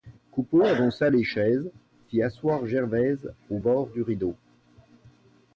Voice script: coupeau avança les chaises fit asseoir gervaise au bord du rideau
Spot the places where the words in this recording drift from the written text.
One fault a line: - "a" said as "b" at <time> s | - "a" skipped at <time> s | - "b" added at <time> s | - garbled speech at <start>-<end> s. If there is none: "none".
none